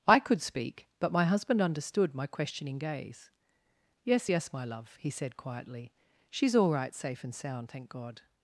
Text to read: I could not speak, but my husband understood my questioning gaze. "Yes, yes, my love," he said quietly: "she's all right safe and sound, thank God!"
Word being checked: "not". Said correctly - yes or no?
no